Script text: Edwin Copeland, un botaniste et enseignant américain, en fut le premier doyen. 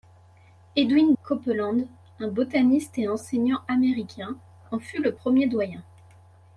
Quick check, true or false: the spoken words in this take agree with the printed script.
true